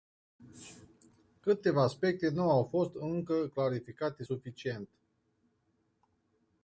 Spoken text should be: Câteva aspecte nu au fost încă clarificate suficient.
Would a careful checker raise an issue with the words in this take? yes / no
no